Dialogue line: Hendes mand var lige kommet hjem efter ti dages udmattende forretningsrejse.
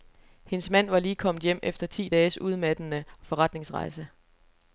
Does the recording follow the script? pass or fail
pass